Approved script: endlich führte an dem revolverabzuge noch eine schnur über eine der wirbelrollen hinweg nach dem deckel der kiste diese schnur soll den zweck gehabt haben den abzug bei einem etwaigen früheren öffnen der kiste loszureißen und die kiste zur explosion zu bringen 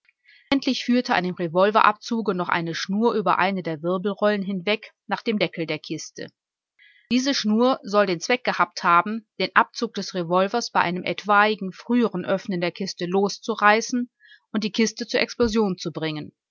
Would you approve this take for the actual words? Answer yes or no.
no